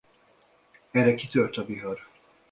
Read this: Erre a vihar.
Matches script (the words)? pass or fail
fail